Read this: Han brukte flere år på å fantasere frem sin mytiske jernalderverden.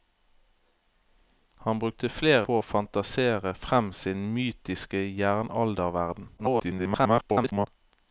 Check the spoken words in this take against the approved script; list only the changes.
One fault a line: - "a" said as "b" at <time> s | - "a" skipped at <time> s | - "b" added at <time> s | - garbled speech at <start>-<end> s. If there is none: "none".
- "år" skipped at 2.5 s
- garbled speech at 6.4-7.7 s